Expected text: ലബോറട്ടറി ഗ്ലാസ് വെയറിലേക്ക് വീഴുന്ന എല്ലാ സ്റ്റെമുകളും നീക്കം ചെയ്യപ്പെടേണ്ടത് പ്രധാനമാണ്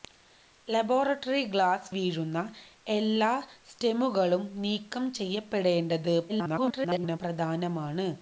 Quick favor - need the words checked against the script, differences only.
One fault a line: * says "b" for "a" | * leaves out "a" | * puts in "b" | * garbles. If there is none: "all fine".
* leaves out "വെയറിലേക്ക്"
* garbles